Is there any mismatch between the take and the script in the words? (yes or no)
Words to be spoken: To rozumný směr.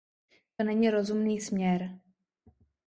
yes